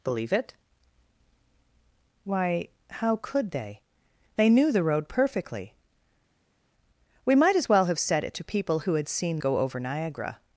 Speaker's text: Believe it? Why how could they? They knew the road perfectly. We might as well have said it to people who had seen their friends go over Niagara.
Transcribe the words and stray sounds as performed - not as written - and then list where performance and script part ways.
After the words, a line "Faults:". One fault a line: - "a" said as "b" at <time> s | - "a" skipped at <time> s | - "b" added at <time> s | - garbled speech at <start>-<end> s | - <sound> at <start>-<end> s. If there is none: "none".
Believe it? Why how could they? They knew the road perfectly. We might as well have said it to people who had seen go over Niagara.
Faults:
- "their friends" skipped at 9.4 s